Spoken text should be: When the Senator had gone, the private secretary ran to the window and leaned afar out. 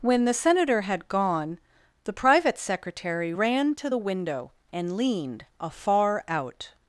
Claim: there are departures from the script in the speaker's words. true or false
false